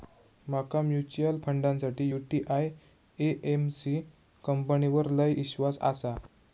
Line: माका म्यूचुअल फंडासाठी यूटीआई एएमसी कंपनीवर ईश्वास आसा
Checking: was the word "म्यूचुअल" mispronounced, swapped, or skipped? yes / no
no